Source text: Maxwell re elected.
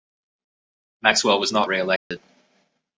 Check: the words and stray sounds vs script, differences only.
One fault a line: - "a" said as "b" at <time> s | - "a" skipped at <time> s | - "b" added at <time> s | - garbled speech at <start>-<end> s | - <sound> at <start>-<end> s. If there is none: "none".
- "was not" added at 1.4 s
- dropout at 2.0-2.1 s